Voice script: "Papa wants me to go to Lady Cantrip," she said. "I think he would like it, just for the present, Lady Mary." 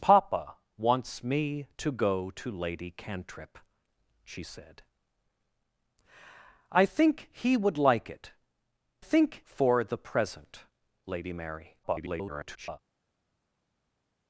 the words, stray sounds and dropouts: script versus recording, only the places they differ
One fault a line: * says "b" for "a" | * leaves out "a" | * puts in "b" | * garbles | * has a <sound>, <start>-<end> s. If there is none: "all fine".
* says "think" for "just"
* garbles